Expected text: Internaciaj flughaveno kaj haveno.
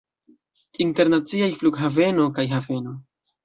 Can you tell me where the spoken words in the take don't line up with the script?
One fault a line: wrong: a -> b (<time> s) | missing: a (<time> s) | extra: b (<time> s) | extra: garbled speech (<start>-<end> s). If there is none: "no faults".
no faults